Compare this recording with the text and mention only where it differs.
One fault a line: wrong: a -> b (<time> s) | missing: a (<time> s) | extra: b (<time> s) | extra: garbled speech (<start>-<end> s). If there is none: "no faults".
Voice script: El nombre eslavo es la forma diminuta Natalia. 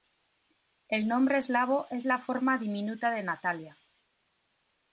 extra: de (3.1 s)